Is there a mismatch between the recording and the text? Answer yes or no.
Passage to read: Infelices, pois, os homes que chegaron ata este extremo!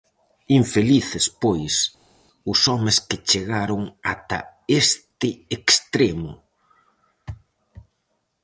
no